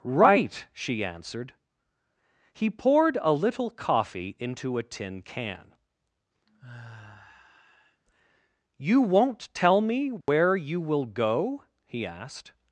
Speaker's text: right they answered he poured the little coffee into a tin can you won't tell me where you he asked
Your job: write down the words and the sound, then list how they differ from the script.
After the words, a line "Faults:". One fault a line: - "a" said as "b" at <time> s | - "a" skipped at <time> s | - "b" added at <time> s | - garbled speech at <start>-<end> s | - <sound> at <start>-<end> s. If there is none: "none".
right she answered he poured a little coffee into a tin can you won't tell me where you will go he asked
Faults:
- "they" said as "she" at 0.7 s
- "the" said as "a" at 3.2 s
- sigh at 6.5-8.0 s
- dropout at 10.2-10.3 s
- "will go" added at 10.8 s